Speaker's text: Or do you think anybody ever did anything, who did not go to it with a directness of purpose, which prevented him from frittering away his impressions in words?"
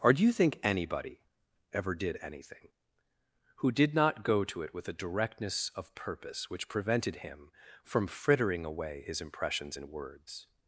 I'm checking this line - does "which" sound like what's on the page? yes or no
yes